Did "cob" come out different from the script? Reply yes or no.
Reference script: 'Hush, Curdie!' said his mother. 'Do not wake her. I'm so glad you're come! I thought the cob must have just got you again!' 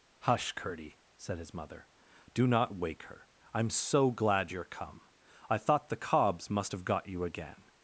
yes